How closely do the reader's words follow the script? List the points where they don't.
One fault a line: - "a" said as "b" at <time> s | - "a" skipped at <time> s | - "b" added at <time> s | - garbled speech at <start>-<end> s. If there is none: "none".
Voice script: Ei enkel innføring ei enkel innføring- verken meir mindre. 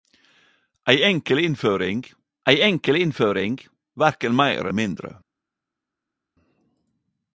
none